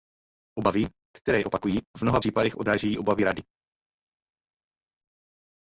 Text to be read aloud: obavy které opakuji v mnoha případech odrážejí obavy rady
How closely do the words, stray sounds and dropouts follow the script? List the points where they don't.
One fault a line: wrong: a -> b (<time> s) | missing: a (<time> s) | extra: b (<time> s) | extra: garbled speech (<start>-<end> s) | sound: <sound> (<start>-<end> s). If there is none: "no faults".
no faults